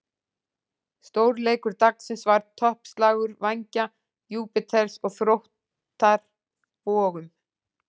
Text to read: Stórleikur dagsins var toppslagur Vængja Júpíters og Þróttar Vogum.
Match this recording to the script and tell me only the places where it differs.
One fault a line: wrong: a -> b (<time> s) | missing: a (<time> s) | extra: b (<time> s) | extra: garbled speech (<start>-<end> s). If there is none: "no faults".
no faults